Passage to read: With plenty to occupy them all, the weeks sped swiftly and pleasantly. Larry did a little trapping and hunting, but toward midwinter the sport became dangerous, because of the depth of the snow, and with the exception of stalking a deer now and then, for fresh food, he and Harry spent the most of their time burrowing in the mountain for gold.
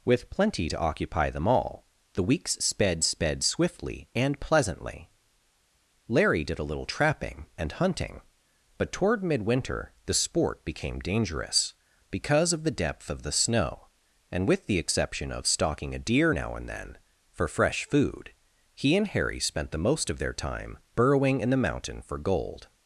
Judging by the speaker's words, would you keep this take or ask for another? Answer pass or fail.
fail